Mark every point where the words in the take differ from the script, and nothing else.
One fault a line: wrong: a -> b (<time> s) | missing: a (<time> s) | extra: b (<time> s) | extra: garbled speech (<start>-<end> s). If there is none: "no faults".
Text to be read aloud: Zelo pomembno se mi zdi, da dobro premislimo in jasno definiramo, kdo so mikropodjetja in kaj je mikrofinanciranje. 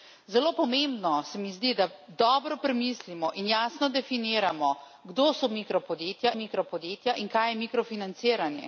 extra: mikropodjetja (6.3 s)